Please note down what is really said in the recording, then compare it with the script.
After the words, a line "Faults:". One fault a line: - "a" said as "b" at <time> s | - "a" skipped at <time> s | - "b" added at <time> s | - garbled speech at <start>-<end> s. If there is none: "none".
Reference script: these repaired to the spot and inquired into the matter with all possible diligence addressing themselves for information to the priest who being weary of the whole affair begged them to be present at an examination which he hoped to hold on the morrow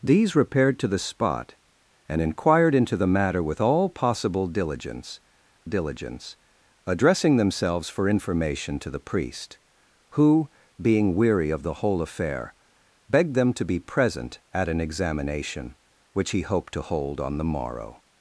these repaired to the spot and inquired into the matter with all possible diligence diligence addressing themselves for information to the priest who being weary of the whole affair begged them to be present at an examination which he hoped to hold on the morrow
Faults:
- "diligence" added at 5.6 s